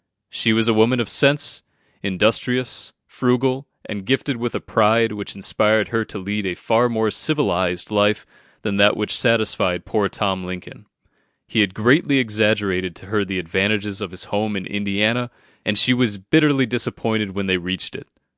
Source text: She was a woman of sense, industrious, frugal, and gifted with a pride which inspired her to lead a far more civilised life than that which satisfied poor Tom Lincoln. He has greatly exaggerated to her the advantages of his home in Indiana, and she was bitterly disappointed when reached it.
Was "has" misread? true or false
true